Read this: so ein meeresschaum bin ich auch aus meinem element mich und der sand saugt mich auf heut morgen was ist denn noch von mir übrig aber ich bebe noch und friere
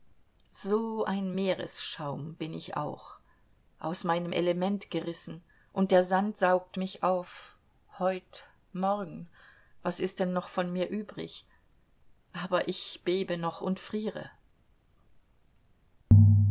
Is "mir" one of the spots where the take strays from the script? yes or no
no